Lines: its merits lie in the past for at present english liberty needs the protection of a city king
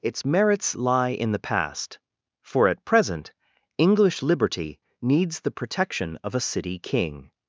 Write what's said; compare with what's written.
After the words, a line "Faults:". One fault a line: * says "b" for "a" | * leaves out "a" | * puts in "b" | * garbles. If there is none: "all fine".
its merits lie in the past for at present english liberty needs the protection of a city king
Faults:
all fine